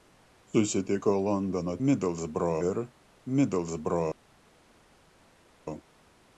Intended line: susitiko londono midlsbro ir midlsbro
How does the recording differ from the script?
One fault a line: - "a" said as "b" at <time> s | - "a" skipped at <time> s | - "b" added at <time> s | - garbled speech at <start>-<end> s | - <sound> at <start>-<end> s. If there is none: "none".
none